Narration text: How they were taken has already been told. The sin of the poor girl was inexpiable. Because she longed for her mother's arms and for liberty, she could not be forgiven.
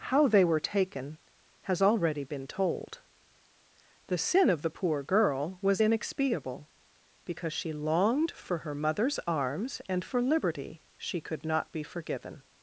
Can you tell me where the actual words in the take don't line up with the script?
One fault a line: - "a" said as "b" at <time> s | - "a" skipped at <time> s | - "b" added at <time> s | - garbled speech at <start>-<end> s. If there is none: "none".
none